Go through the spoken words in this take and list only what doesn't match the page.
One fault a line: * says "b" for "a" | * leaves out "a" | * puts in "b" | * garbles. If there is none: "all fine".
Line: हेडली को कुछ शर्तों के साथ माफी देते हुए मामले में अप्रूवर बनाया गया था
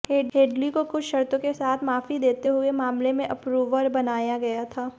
all fine